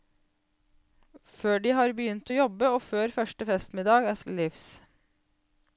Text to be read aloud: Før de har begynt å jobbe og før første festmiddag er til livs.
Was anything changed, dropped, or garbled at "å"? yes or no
no